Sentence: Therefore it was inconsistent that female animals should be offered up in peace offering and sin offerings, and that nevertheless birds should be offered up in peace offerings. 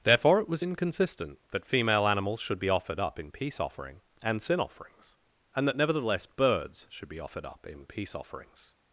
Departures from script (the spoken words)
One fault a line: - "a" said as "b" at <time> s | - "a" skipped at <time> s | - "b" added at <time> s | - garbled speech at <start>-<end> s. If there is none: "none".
none